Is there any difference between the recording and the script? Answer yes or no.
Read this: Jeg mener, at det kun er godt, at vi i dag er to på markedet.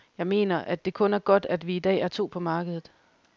no